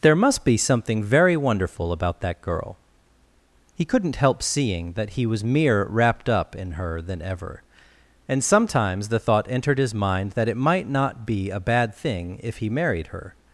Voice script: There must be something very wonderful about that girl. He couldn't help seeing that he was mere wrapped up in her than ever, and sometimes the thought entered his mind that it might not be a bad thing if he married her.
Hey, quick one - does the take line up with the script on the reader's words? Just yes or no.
yes